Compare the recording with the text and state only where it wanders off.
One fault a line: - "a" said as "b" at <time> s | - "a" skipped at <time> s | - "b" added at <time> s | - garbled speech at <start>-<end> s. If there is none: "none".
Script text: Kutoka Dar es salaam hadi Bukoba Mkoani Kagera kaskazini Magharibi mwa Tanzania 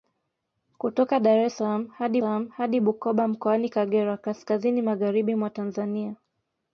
- "salaam hadi" added at 2.2 s